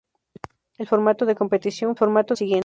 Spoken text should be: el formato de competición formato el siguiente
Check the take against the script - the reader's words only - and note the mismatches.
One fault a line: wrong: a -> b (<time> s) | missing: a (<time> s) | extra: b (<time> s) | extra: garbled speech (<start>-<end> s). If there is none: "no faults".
no faults